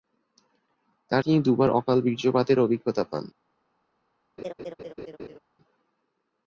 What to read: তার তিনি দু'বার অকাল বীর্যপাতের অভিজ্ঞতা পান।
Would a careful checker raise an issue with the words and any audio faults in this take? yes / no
yes